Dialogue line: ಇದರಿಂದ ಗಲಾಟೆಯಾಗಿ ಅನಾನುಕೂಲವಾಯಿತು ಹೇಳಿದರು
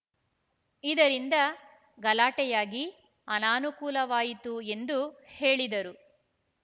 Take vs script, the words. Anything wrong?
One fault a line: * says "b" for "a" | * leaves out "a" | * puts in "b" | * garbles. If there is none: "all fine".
* puts in "ಎಂದು"